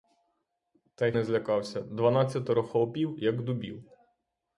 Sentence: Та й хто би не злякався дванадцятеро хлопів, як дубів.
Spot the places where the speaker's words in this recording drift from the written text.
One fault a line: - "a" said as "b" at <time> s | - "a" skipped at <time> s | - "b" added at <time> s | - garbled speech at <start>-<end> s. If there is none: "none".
- "хто би" skipped at 1.1 s